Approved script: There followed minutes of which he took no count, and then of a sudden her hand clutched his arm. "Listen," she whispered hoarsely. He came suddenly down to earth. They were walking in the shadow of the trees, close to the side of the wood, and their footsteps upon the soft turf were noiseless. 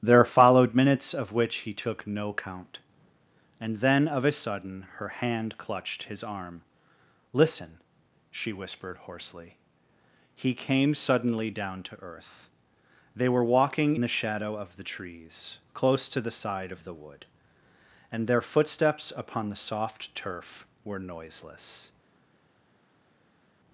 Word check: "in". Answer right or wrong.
wrong